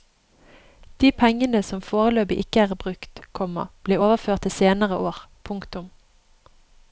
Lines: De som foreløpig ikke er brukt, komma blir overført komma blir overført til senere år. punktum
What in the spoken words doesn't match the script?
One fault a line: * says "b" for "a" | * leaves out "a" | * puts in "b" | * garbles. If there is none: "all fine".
* puts in "pengene"
* leaves out "komma blir overført"